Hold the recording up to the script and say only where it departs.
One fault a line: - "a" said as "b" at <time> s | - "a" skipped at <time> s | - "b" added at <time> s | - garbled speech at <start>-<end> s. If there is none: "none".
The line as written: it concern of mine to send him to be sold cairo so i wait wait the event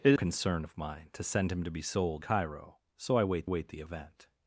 none